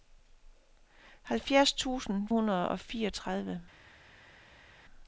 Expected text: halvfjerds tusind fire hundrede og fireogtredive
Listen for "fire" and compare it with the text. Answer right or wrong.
wrong